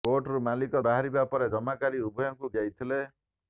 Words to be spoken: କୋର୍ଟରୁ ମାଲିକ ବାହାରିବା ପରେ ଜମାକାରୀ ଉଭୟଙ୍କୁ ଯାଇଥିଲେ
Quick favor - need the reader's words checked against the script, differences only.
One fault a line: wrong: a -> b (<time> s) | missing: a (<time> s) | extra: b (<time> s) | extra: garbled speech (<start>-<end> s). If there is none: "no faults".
no faults